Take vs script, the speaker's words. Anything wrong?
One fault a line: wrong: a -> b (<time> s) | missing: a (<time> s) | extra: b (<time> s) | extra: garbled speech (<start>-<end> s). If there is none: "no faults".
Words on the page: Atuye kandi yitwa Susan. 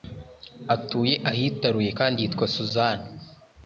extra: ahitaruye (1.3 s)